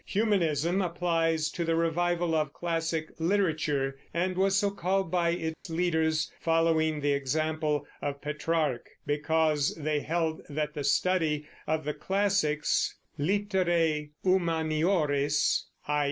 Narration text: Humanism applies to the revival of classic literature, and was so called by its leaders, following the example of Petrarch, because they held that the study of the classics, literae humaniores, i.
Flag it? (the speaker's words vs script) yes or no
no